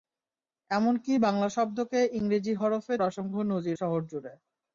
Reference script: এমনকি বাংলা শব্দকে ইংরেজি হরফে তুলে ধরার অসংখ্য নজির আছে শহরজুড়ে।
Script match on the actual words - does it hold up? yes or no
no